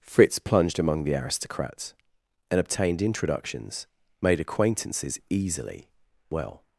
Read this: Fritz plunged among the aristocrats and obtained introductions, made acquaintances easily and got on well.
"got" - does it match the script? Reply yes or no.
no